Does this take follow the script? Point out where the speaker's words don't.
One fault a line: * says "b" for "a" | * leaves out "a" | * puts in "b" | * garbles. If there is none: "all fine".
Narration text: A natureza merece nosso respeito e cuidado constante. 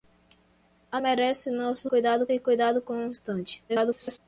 * leaves out "natureza"
* says "cuidado" for "respeito"
* garbles